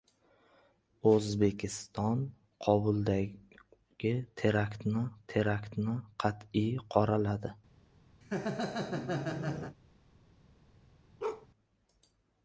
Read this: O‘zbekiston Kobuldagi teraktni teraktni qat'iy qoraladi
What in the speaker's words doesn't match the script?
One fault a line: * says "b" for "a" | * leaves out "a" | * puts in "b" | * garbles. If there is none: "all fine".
all fine